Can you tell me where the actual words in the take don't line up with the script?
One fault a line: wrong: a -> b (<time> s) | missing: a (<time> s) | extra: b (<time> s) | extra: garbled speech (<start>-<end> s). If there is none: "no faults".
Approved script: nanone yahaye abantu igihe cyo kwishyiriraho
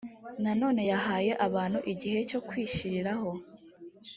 no faults